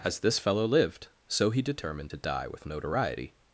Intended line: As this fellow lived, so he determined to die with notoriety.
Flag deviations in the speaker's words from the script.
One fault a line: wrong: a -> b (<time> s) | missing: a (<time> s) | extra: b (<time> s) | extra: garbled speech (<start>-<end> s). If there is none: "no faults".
no faults